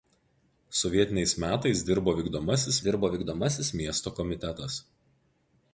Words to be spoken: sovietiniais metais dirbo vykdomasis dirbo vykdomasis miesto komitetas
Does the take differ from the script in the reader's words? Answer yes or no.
no